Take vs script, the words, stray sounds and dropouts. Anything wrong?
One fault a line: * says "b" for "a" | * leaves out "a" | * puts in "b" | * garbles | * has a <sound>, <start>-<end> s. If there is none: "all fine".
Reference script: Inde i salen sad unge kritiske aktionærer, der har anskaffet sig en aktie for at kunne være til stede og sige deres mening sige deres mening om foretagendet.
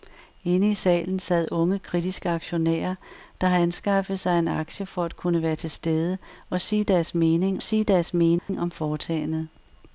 * has a dropout, 8.4-8.5 s